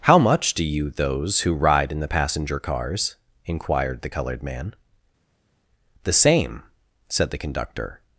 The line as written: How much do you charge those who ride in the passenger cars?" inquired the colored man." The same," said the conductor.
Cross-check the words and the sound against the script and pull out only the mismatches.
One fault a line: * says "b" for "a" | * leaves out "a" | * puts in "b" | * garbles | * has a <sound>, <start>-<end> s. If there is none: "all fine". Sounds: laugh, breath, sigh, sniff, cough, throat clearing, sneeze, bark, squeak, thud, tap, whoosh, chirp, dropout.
* leaves out "charge"